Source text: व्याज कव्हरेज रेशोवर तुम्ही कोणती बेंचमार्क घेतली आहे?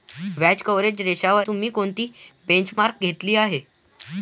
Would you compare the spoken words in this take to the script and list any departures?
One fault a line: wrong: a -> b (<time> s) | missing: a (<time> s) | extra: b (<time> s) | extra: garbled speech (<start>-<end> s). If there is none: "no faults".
no faults